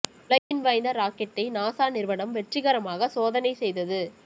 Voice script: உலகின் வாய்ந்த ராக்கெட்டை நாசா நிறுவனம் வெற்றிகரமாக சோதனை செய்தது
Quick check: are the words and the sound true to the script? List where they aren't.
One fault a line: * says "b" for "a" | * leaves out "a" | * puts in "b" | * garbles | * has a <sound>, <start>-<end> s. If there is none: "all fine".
* has a dropout, 0.4-0.5 s